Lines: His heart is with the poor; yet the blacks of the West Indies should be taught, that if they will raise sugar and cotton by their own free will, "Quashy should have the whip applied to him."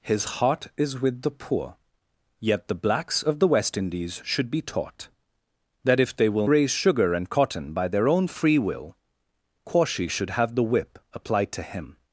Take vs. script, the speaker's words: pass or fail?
pass